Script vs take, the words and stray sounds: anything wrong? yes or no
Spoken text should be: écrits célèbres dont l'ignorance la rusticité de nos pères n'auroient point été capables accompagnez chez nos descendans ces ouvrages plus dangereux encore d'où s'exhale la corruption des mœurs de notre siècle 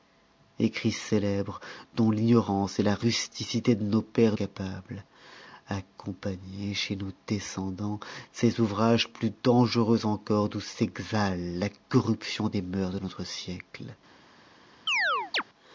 yes